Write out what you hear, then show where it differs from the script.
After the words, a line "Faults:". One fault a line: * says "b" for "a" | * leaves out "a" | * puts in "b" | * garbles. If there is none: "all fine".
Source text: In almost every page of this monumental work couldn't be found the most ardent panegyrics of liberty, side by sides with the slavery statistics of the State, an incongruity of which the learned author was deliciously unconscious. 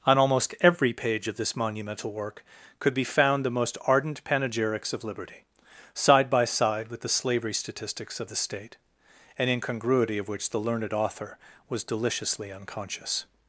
On almost every page of this monumental work could be found the most ardent panegyrics of liberty, side by side with the slavery statistics of the State, an incongruity of which the learned author was deliciously unconscious.
Faults:
* says "On" for "In"
* says "could" for "couldn't"
* says "side" for "sides"